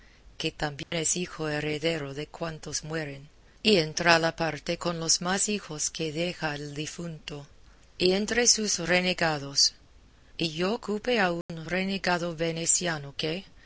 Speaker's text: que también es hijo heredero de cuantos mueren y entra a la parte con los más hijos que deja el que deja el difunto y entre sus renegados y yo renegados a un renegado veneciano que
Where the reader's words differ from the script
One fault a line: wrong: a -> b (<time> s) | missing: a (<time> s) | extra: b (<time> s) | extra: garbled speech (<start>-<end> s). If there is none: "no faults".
missing: que deja el (6.7 s)
wrong: renegados -> cupe (10.8 s)